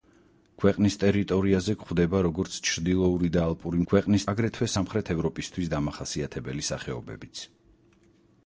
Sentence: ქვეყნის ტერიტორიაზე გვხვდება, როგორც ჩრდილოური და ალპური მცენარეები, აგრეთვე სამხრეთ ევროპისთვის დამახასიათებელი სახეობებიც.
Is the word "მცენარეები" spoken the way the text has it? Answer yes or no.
no